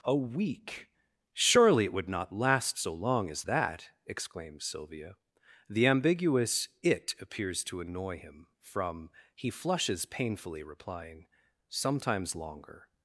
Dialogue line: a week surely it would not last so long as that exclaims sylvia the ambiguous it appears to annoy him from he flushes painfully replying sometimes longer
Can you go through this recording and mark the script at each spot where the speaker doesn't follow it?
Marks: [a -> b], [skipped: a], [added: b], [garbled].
a week surely it would not last so long as that exclaims sylvia the ambiguous it appears to annoy him from he flushes painfully replying sometimes longer